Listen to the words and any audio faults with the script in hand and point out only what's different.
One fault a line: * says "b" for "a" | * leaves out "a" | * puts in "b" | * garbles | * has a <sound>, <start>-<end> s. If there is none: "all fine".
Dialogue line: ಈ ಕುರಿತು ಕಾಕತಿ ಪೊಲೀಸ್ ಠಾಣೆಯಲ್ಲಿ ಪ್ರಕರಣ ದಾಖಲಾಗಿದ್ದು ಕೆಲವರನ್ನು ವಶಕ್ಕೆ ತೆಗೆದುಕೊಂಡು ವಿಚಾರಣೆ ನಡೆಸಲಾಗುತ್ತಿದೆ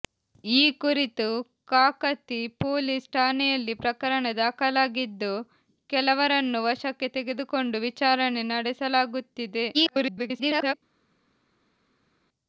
* garbles